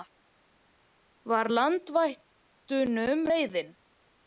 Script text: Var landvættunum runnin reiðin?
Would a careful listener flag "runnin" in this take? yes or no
yes